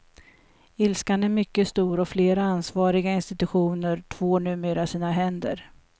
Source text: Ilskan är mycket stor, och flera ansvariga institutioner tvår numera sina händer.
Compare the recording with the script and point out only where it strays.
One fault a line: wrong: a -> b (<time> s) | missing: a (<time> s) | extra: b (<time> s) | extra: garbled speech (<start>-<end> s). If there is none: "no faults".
no faults